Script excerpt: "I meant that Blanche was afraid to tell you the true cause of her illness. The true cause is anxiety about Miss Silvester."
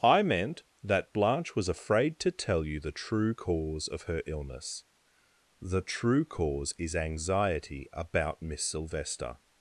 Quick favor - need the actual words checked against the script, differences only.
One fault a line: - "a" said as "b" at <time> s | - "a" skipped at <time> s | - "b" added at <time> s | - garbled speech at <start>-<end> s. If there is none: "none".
none